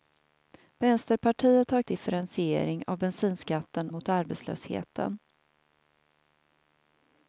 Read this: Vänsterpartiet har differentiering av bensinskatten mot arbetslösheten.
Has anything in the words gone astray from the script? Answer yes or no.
no